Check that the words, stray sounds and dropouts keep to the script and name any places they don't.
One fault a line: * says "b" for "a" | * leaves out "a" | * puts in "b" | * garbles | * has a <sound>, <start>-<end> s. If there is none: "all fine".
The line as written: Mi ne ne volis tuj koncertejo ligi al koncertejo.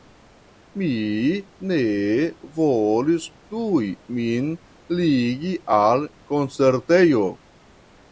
* leaves out "ne"
* says "min" for "koncertejo"